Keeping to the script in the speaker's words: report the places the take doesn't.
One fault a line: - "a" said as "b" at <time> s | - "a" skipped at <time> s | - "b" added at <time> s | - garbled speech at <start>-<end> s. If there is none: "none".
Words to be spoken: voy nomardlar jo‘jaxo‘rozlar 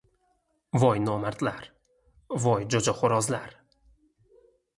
- "voy" added at 2.5 s